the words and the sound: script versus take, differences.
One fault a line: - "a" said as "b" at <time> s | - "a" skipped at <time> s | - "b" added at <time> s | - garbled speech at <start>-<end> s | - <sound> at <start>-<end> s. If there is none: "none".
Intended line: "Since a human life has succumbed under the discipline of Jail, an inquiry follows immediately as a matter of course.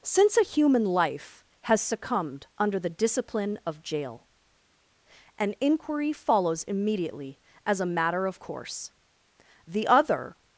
- "The other" added at 9.7 s